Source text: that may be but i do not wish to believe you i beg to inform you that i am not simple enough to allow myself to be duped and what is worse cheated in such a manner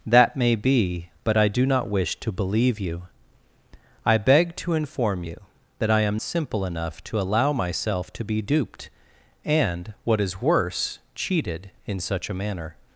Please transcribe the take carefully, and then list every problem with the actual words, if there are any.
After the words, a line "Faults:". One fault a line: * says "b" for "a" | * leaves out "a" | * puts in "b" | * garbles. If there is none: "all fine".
that may be but i do not wish to believe you i beg to inform you that i am simple enough to allow myself to be duped and what is worse cheated in such a manner
Faults:
* leaves out "not"